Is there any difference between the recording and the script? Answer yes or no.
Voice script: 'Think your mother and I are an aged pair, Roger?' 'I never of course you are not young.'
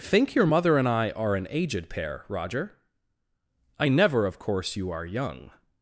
yes